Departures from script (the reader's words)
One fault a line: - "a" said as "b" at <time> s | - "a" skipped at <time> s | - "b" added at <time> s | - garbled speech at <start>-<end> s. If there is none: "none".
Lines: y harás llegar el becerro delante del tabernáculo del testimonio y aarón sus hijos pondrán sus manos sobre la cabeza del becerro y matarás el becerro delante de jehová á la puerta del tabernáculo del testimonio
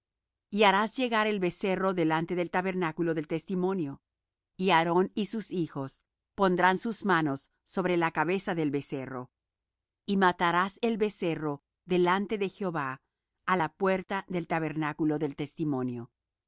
- "y" added at 5.2 s